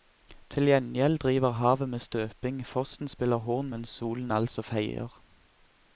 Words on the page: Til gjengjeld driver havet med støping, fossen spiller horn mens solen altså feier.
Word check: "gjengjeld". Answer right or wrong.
right